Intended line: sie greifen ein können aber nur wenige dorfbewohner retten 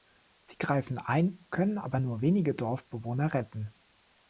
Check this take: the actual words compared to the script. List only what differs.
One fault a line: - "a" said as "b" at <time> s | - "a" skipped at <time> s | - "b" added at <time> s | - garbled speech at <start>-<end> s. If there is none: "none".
none